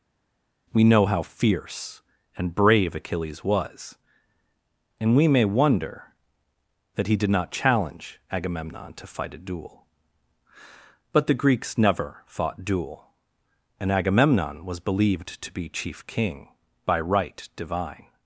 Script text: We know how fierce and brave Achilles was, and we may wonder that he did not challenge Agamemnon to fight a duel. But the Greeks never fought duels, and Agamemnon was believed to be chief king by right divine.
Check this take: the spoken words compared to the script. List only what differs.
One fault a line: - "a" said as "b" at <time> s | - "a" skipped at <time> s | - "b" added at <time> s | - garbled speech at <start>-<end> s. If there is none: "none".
- "duels" said as "duel" at 12.6 s